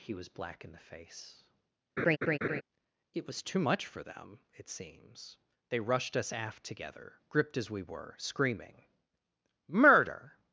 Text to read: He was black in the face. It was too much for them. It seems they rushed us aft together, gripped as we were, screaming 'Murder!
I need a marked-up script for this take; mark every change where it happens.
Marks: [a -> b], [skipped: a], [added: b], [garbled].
He was black in the face. It was too much for them. It seems they rushed us aft together, gripped as we were, screaming 'Murder!